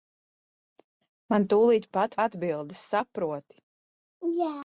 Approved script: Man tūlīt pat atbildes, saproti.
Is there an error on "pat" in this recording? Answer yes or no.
no